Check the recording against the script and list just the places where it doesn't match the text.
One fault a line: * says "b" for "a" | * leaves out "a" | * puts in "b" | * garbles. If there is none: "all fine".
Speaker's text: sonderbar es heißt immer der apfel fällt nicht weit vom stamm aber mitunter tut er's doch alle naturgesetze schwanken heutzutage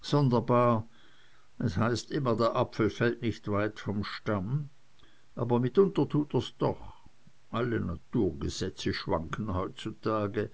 all fine